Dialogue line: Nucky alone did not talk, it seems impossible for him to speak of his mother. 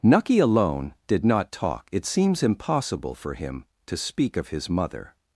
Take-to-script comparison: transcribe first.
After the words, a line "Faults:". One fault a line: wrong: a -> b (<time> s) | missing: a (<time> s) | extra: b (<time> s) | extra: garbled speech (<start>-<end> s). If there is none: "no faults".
Nucky alone did not talk, it seems impossible for him to speak of his mother.
Faults:
no faults